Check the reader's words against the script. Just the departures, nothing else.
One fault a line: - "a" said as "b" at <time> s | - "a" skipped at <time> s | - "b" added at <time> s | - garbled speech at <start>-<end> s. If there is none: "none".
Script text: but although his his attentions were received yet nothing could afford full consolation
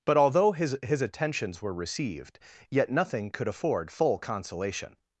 none